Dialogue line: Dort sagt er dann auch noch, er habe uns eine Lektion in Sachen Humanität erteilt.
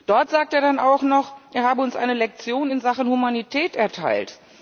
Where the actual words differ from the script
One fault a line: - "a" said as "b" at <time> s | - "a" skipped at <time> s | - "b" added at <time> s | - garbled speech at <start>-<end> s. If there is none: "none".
none